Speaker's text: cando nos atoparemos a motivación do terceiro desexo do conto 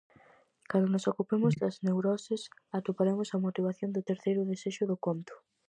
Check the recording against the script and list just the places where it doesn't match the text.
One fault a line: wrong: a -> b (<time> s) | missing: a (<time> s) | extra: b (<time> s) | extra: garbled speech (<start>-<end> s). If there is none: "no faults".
extra: ocupemos das neuroses (1.1 s)